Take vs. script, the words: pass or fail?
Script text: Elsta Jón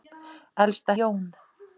pass